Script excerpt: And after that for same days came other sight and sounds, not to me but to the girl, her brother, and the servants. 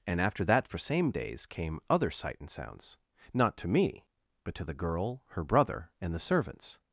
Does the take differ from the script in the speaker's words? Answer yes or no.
no